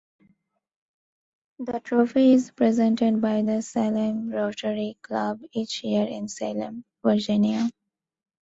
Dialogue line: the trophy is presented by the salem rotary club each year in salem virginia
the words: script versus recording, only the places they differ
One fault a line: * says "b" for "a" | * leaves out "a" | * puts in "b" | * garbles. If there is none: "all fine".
all fine